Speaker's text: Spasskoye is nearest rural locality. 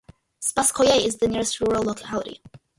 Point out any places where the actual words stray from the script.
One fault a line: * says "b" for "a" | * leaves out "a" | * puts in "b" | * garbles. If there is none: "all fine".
* puts in "the"